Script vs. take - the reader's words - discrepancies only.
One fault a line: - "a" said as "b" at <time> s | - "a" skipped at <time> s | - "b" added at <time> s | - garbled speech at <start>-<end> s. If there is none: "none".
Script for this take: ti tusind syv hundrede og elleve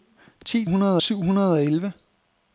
- "tusind" said as "hundrede" at 0.7 s